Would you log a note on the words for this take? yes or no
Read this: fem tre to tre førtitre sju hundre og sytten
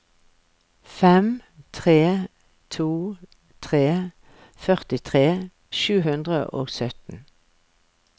no